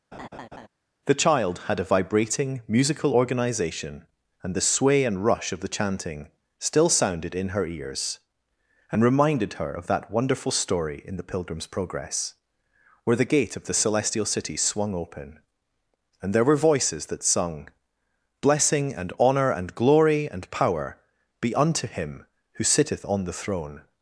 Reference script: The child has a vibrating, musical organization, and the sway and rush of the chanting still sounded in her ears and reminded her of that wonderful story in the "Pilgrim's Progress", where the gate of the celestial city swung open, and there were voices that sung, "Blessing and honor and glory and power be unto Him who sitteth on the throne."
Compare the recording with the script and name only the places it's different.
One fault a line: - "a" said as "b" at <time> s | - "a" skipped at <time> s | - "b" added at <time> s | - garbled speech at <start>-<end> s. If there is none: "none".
- "has" said as "had" at 1.7 s